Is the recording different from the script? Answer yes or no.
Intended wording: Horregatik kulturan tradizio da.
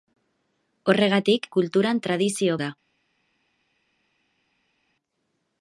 no